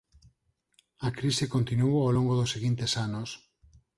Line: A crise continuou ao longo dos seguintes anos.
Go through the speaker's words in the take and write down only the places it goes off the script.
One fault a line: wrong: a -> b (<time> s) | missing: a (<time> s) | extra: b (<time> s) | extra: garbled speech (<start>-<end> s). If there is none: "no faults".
no faults